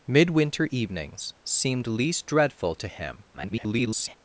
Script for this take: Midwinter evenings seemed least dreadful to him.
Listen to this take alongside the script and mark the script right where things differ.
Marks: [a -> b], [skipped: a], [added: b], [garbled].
Midwinter evenings seemed least dreadful to him. [garbled]